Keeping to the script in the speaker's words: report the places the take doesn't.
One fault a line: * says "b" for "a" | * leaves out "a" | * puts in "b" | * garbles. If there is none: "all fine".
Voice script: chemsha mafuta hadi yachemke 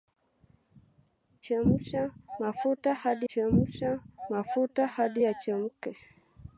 * puts in "chemsha mafuta hadi"